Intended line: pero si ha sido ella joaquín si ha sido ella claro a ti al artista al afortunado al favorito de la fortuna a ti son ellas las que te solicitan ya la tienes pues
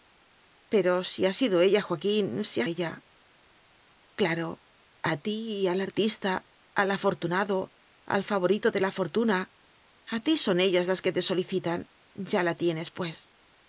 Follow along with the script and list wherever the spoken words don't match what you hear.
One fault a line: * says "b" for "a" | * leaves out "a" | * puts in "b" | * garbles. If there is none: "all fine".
* leaves out "sido"